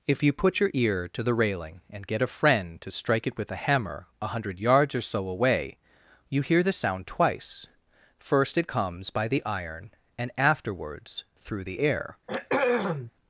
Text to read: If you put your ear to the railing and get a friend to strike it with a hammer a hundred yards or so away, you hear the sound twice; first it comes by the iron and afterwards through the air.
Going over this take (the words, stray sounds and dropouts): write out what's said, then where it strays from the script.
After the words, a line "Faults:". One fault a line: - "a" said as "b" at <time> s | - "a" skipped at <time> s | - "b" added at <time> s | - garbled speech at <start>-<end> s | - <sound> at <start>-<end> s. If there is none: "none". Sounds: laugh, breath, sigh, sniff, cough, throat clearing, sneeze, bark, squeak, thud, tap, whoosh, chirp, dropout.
If you put your ear to the railing and get a friend to strike it with a hammer a hundred yards or so away, you hear the sound twice; first it comes by the iron and afterwards through the air.
Faults:
- throat clearing at 12.3-13.1 s